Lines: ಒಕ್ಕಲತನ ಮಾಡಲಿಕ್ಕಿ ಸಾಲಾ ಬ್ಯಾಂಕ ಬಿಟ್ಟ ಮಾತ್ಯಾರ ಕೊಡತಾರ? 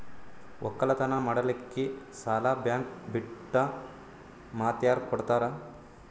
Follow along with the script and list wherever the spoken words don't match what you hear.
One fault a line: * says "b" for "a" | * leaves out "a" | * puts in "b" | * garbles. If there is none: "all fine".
all fine